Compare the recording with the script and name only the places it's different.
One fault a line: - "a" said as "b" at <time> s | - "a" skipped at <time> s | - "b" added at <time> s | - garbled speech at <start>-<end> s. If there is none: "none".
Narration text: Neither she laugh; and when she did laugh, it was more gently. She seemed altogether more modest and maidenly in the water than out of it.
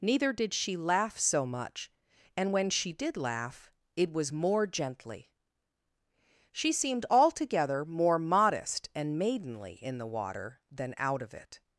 - "did" added at 0.3 s
- "so much" added at 1.2 s